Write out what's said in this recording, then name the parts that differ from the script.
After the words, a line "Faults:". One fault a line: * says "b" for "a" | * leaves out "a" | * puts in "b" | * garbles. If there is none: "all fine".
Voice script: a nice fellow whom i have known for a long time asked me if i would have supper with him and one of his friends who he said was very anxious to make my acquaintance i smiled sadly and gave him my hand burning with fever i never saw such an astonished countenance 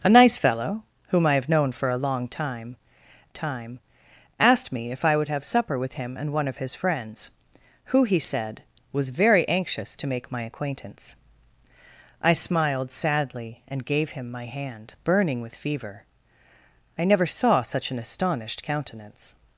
a nice fellow whom i have known for a long time time asked me if i would have supper with him and one of his friends who he said was very anxious to make my acquaintance i smiled sadly and gave him my hand burning with fever i never saw such an astonished countenance
Faults:
* puts in "time"